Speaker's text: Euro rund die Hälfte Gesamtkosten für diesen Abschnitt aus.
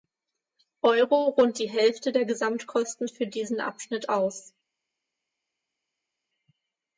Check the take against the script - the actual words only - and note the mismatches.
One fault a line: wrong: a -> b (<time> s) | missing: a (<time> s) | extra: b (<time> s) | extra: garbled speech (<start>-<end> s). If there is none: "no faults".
extra: der (2.1 s)